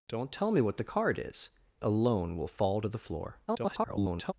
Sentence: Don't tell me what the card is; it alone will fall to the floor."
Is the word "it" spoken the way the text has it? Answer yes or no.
no